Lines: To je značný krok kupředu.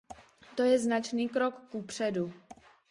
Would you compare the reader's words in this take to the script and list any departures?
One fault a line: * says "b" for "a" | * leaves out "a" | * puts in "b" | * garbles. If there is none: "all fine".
all fine